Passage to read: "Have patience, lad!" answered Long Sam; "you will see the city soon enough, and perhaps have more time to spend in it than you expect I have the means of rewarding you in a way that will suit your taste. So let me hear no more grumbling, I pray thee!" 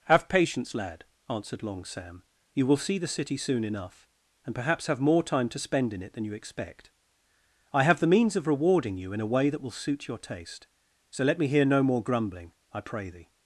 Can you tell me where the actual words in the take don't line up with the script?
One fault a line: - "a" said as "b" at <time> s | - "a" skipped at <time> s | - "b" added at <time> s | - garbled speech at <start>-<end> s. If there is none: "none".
none